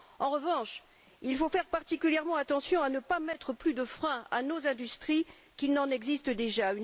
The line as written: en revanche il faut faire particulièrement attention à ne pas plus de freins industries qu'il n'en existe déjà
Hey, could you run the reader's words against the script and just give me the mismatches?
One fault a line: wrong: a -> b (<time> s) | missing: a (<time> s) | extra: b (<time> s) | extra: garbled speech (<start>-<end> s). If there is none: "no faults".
extra: mettre (3.2 s)
extra: à nos (4.3 s)